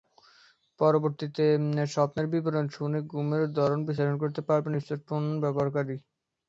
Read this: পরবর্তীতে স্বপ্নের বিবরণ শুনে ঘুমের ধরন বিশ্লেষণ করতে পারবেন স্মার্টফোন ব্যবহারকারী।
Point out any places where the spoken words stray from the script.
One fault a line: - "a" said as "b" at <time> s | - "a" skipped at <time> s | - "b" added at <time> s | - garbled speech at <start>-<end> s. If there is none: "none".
none